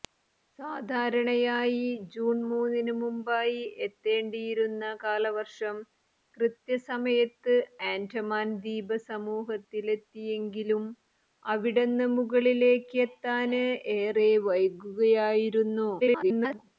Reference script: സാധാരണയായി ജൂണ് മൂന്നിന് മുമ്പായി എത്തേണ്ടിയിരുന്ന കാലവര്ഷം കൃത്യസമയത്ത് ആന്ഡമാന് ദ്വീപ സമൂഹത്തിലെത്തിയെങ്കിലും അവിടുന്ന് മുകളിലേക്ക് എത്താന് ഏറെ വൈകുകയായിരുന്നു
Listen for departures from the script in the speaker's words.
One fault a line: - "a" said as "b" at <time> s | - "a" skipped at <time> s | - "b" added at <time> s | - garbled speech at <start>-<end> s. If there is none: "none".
- garbled speech at 16.0-16.6 s